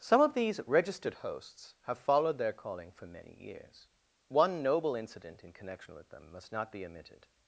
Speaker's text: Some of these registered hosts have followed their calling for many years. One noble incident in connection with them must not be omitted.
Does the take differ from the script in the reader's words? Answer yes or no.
no